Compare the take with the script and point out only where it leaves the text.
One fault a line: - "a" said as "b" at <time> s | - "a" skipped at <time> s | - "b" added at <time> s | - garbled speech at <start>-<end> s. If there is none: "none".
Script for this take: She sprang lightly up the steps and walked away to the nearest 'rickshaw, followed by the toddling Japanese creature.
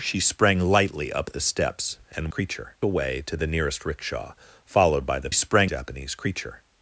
- "walked" said as "creature" at 2.3 s
- "toddling" said as "sprang" at 5.3 s